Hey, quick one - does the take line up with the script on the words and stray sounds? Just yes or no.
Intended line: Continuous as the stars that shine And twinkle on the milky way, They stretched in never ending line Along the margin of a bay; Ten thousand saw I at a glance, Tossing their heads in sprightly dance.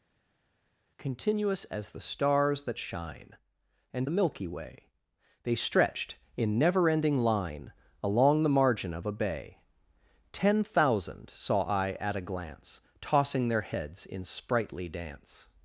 no